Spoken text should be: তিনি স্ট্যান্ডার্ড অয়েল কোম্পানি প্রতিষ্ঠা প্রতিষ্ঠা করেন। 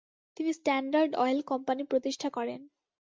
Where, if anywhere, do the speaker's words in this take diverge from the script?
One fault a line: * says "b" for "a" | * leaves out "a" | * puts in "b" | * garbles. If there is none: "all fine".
* leaves out "প্রতিষ্ঠা"